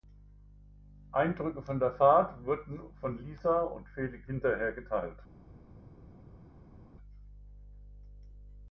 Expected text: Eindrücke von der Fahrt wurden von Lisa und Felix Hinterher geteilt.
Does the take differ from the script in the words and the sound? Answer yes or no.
no